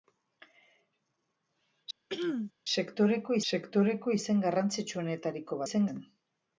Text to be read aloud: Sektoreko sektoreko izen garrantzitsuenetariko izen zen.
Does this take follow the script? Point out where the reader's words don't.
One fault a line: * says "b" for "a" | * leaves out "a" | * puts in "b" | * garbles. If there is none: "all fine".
all fine